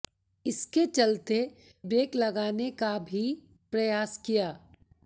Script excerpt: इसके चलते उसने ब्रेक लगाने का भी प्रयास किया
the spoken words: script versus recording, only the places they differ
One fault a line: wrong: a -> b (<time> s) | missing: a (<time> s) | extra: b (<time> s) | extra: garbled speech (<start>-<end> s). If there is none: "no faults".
missing: उसने (1.4 s)